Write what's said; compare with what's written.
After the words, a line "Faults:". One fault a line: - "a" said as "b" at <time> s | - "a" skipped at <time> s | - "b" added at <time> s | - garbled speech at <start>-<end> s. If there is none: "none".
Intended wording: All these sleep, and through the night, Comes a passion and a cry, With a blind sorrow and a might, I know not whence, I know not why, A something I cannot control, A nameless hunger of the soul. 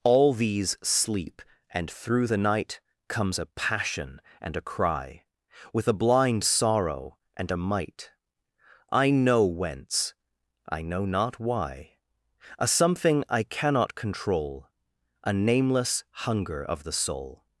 All these sleep, and through the night, Comes a passion and a cry, With a blind sorrow and a might, I know whence, I know not why, A something I cannot control, A nameless hunger of the soul.
Faults:
- "not" skipped at 9.4 s